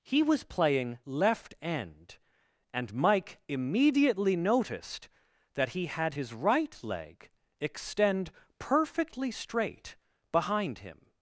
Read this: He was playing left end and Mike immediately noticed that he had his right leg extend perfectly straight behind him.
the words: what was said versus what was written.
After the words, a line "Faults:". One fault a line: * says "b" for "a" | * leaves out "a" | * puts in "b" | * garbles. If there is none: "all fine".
He was playing left end and Mike immediately noticed that he had his right leg extend perfectly straight behind him.
Faults:
all fine